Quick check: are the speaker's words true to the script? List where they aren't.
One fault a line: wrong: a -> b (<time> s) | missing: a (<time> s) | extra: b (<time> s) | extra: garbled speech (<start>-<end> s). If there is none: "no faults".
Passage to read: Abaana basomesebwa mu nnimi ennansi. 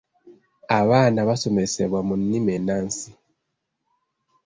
no faults